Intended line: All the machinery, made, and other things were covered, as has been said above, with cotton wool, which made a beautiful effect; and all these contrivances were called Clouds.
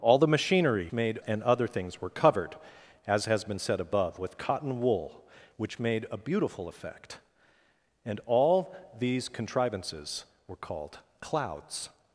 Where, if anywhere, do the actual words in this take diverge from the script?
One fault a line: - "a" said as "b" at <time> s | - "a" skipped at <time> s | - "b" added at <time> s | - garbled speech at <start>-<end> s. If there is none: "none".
none